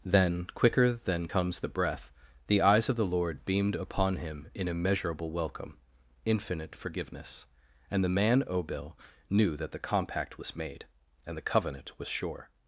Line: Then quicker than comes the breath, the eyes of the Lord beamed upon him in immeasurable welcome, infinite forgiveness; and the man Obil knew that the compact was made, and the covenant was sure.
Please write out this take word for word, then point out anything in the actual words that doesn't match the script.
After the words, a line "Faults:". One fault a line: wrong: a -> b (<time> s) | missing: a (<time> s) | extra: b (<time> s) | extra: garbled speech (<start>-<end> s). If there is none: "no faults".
Then quicker than comes the breath, the eyes of the Lord beamed upon him in immeasurable welcome, infinite forgiveness; and the man Obil knew that the compact was made, and the covenant was sure.
Faults:
no faults